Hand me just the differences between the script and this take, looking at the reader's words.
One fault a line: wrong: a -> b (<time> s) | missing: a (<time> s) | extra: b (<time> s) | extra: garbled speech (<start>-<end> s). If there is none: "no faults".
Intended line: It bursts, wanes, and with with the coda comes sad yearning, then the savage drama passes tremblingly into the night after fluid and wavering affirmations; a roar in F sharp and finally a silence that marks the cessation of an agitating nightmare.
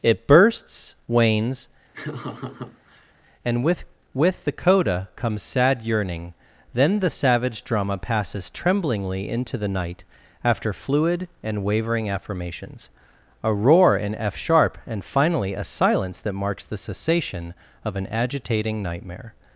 no faults